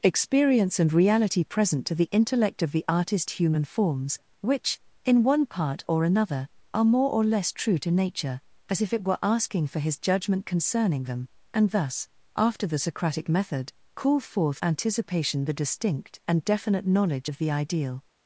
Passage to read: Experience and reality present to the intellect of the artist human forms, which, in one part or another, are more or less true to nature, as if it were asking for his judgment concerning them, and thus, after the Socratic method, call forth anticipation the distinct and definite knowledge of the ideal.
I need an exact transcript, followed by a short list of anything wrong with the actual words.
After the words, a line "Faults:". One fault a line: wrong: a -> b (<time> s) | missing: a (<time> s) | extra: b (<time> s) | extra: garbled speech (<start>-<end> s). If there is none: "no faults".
Experience and reality present to the intellect of the artist human forms, which, in one part or another, are more or less true to nature, as if it were asking for his judgment concerning them, and thus, after the Socratic method, call forth anticipation the distinct and definite knowledge of the ideal.
Faults:
no faults